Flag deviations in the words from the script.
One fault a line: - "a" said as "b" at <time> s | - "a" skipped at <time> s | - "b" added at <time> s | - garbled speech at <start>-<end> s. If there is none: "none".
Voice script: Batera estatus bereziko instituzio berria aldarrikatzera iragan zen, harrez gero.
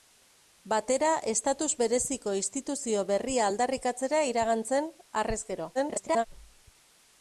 - garbled speech at 5.7-6.3 s